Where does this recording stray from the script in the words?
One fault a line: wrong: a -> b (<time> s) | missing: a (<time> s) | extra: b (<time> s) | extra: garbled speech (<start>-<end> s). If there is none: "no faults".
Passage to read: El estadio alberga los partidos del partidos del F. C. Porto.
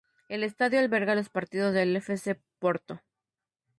missing: partidos del (1.9 s)